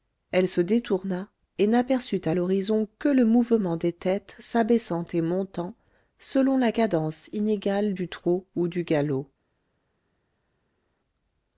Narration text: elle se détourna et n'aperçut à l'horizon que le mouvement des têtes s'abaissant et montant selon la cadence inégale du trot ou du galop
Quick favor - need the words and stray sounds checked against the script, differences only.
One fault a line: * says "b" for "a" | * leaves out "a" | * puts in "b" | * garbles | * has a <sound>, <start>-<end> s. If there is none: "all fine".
all fine